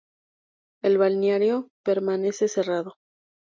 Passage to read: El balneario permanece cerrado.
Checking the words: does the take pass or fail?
pass